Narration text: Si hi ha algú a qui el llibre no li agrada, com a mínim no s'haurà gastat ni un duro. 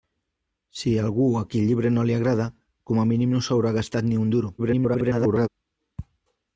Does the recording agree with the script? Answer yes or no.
no